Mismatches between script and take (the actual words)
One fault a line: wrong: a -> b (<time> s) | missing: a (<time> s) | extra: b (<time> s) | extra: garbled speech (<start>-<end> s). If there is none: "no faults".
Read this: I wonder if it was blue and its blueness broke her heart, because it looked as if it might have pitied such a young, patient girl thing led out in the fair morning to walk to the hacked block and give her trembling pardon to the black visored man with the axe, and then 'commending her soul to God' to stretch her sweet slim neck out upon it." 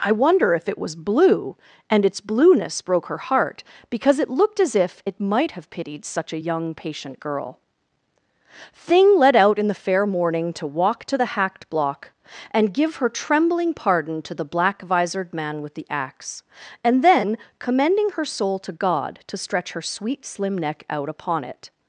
no faults